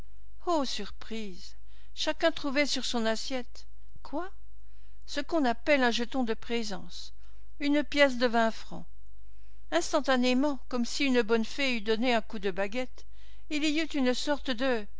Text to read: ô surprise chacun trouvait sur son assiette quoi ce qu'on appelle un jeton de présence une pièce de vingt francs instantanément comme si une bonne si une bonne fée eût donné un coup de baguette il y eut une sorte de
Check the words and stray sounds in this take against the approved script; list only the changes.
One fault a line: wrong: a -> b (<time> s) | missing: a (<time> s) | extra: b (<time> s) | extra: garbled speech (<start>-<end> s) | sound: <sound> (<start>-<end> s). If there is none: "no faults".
missing: si une bonne (11.4 s)